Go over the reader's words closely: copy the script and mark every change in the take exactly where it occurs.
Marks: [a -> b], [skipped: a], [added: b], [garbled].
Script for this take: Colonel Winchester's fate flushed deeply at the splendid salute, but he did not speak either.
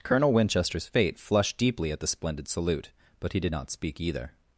Colonel Winchester's fate flushed deeply at the splendid salute, but he did not speak either.